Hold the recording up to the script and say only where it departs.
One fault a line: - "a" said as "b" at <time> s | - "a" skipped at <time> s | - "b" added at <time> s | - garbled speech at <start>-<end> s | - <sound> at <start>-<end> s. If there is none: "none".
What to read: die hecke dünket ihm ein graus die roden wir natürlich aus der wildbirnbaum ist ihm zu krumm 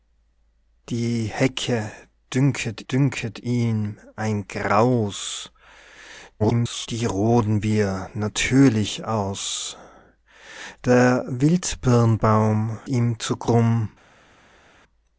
- "dünket" added at 2.9 s
- garbled speech at 6.4-6.9 s
- "ist" skipped at 12.8 s